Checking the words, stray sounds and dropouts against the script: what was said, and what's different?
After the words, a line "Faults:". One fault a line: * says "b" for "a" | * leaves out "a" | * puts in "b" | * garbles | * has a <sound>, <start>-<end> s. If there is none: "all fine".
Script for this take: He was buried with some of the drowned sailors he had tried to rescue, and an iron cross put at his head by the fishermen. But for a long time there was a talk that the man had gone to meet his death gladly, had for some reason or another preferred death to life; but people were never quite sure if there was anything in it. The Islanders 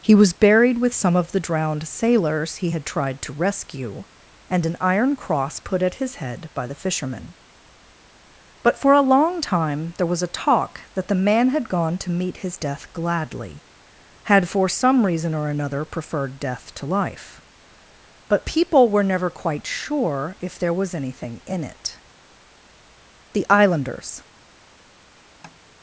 He was buried with some of the drowned sailors he had tried to rescue, and an iron cross put at his head by the fishermen. But for a long time there was a talk that the man had gone to meet his death gladly, had for some reason or another preferred death to life; but people were never quite sure if there was anything in it. The Islanders
Faults:
* has a tap, 25.4-25.6 s